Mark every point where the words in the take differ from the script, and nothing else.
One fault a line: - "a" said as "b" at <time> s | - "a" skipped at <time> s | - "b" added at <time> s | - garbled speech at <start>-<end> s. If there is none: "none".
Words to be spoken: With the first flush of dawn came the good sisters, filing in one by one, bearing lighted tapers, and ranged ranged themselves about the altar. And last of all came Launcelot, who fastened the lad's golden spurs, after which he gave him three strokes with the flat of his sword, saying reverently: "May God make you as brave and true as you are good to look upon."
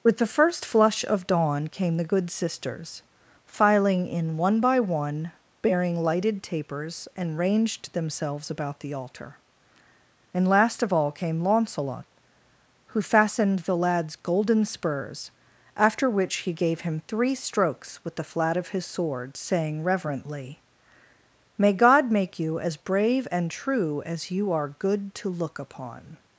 - "ranged" skipped at 7.9 s